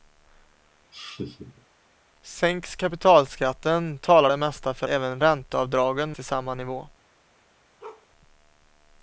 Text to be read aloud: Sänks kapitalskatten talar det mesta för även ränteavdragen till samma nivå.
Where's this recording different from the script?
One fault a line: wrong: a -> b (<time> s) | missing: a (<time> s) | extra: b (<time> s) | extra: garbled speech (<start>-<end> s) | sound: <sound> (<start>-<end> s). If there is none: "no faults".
sound: laugh (0.9-1.7 s)
sound: bark (7.8-8.1 s)